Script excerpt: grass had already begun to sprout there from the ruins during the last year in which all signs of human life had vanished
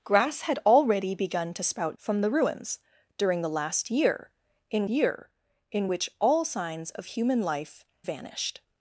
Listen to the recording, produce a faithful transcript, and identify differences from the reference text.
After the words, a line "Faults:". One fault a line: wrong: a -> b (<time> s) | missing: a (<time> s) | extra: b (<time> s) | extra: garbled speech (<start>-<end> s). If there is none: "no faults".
grass had already begun to sprout from the ruins during the last year in year in which all signs of human life vanished
Faults:
missing: there (2.0 s)
extra: year in (4.9 s)
missing: had (7.8 s)